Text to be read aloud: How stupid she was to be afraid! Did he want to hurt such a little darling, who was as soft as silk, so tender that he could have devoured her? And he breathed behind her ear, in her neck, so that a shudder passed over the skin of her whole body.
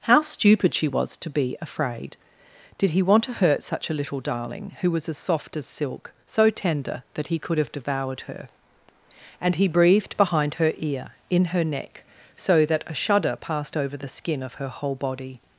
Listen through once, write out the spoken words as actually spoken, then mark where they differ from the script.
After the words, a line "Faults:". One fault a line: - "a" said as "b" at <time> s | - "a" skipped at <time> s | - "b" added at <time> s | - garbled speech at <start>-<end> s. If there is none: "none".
How stupid she was to be afraid! Did he want to hurt such a little darling, who was as soft as silk, so tender that he could have devoured her? And he breathed behind her ear, in her neck, so that a shudder passed over the skin of her whole body.
Faults:
none